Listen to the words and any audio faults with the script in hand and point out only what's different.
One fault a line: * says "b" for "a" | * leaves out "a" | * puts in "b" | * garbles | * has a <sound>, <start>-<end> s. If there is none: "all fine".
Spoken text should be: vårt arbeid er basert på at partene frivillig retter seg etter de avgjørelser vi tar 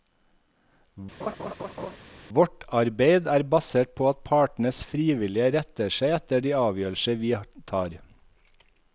* has a laugh, 1.2-2.0 s